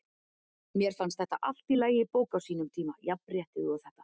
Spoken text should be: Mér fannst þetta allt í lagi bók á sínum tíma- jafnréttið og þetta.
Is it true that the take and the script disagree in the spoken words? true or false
false